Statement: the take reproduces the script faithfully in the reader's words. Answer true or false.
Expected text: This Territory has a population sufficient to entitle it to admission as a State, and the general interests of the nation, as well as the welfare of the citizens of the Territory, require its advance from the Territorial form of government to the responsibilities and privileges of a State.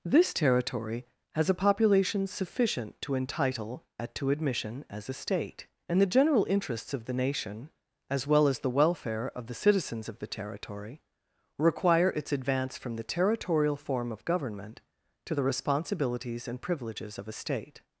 false